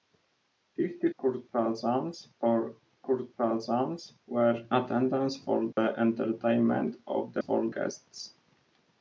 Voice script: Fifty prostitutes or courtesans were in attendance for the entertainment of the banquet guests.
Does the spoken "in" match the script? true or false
false